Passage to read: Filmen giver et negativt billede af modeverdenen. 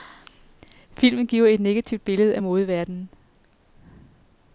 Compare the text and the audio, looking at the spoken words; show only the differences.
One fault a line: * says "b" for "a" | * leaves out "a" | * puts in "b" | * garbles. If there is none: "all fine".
all fine